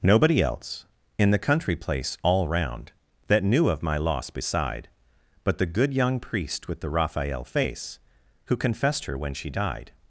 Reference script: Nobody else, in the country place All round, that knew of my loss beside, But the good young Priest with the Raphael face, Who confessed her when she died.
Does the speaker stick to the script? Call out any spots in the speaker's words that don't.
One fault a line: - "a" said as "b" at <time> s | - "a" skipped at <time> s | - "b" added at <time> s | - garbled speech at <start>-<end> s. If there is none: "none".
none